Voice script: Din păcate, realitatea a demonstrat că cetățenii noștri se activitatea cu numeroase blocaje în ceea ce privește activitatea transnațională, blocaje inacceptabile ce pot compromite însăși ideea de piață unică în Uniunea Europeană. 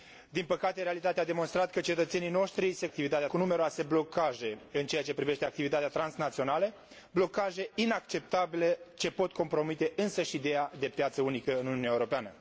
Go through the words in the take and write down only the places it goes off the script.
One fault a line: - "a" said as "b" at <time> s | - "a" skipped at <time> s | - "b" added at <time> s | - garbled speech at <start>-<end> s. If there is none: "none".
none